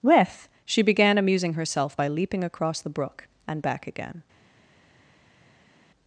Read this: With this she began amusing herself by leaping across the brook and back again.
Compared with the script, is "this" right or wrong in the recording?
wrong